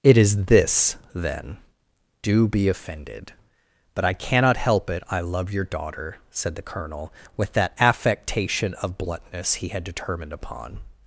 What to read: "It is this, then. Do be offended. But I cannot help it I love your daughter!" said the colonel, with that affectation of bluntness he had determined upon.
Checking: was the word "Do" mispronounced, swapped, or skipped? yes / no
no